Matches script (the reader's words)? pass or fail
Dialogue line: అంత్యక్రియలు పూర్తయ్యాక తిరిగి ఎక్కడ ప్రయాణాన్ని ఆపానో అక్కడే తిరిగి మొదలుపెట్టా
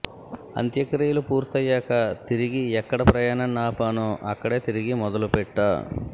pass